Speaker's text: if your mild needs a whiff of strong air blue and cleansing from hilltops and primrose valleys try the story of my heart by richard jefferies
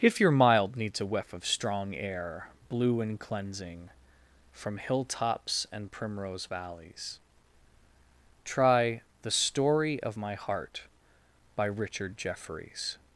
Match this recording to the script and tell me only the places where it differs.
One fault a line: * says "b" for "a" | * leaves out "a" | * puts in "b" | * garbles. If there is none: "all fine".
all fine